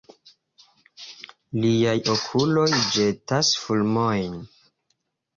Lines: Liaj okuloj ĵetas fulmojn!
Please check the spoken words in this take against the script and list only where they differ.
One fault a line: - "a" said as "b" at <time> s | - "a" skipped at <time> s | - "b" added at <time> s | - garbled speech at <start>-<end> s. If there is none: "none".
none